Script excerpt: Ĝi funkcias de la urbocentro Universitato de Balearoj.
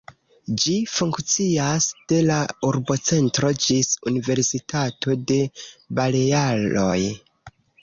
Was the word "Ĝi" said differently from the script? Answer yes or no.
no